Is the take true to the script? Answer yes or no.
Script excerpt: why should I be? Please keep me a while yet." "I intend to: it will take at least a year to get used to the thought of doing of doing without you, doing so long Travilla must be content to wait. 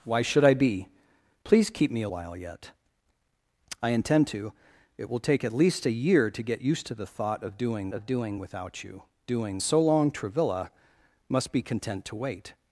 yes